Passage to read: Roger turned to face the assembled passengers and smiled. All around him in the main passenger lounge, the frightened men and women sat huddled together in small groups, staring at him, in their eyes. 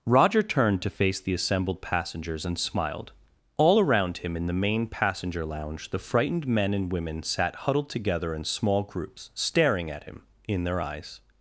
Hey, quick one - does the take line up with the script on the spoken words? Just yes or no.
yes